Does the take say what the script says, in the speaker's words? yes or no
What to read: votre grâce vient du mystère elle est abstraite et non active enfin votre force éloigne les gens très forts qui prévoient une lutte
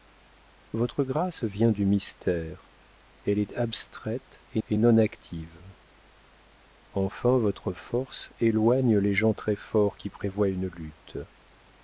no